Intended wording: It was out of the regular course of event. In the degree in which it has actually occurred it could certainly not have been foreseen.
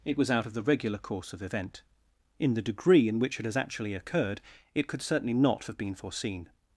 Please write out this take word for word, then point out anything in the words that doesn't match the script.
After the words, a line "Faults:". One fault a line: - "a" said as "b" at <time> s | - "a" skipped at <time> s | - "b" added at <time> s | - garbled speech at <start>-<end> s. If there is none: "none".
It was out of the regular course of event. In the degree in which it has actually occurred it could certainly not have been foreseen.
Faults:
none